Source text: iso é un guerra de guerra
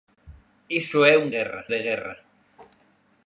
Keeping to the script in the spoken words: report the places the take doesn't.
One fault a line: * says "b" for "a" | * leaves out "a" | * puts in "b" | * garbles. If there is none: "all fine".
all fine